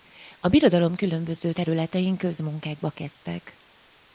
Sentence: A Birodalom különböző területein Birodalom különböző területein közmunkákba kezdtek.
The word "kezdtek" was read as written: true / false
true